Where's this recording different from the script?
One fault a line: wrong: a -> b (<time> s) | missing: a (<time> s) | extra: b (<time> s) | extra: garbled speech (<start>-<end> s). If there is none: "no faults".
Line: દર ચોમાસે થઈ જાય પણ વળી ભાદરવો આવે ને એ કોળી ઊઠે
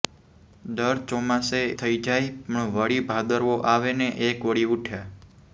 no faults